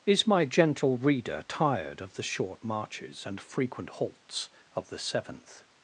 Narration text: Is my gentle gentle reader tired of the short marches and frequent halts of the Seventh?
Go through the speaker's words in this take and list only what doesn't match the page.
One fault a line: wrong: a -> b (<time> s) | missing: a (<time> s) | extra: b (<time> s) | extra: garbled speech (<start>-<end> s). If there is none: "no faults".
missing: gentle (1.0 s)